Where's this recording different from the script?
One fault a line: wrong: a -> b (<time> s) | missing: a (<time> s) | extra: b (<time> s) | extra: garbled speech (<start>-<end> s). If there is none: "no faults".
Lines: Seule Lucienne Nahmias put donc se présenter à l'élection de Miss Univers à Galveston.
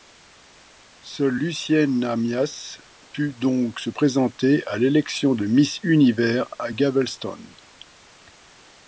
no faults